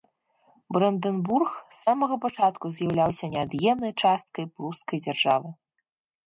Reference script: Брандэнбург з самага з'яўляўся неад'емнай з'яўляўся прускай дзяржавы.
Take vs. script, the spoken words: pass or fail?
fail